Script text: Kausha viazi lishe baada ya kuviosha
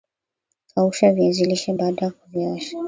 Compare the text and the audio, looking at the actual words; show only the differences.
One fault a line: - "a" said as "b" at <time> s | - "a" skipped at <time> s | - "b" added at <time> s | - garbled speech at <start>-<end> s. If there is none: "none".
none